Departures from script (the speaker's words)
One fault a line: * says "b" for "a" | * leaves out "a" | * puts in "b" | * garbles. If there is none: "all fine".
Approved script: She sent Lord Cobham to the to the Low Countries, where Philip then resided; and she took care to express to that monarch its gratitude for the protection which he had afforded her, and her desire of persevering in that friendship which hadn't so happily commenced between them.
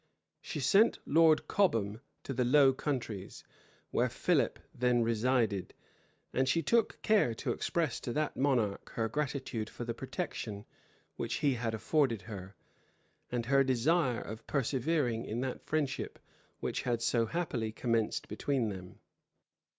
* leaves out "to the"
* says "her" for "its"
* says "had" for "hadn't"